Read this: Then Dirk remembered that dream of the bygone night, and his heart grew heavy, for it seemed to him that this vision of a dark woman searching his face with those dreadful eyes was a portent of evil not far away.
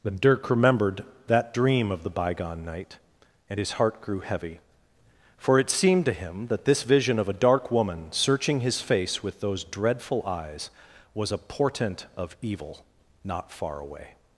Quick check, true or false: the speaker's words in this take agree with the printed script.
true